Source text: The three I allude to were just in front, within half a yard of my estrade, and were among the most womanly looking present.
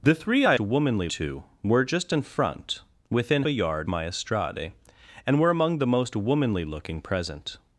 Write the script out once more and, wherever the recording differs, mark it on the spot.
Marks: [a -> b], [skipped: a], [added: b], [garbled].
The three I [allude -> womanly] to were just in front, within [skipped: half] a yard [skipped: of] my estrade, and were among the most womanly looking present.